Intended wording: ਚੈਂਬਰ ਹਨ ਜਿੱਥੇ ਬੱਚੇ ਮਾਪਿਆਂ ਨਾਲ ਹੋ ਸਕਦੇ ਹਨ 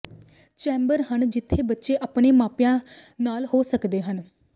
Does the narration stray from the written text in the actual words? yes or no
yes